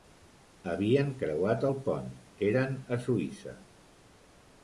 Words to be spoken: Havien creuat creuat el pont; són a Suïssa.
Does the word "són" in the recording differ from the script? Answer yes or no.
yes